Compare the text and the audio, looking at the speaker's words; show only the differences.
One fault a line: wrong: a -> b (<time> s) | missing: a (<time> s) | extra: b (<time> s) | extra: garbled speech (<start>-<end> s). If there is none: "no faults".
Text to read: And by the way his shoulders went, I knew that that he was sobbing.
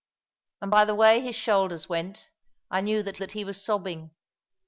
no faults